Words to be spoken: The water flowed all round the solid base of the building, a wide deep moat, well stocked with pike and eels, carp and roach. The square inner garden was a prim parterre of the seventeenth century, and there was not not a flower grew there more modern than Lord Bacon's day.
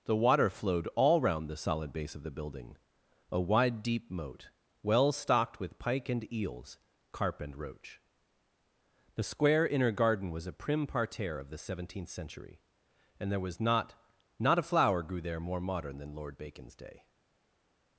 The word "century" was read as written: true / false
true